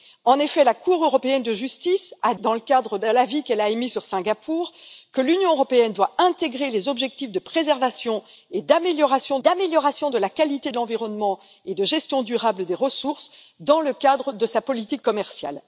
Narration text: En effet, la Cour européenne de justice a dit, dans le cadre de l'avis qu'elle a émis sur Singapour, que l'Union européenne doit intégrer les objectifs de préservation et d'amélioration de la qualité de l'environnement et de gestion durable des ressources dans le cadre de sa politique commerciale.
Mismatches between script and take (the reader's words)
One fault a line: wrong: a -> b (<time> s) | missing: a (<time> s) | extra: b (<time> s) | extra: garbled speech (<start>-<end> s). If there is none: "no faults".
missing: dit (2.3 s)
extra: d'amélioration (9.4 s)